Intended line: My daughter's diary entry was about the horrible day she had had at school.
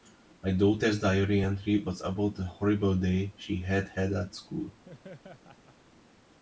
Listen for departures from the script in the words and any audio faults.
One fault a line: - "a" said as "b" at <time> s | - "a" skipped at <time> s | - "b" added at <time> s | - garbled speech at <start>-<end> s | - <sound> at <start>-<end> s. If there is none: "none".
- laugh at 4.8-5.8 s